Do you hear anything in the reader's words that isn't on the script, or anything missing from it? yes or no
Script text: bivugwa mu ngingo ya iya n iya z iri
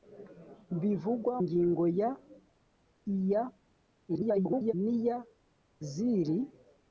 yes